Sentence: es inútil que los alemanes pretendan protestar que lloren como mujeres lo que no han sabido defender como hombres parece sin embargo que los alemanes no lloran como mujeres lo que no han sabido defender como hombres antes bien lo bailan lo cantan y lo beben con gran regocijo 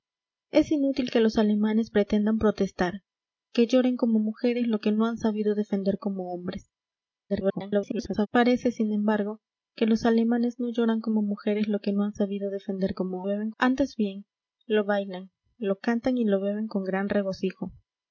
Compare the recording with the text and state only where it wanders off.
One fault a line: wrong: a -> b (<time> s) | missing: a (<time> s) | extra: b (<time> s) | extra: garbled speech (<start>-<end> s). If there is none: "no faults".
extra: garbled speech (7.3-8.3 s)
wrong: hombres -> beben (13.2 s)